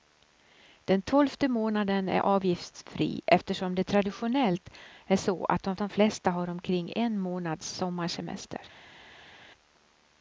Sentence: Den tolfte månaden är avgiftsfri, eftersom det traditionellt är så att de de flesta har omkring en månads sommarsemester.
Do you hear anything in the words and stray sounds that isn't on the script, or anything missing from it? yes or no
no